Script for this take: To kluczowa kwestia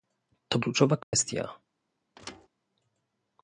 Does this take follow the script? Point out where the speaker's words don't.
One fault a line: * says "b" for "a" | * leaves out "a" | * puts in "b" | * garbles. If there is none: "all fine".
all fine